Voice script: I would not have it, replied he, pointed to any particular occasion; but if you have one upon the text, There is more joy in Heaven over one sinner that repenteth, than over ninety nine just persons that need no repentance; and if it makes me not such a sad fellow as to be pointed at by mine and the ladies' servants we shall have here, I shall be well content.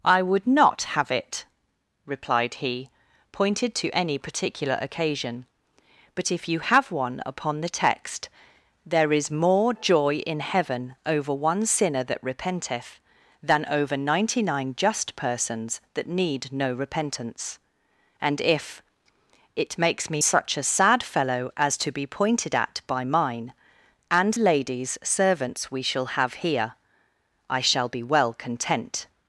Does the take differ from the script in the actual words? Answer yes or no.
yes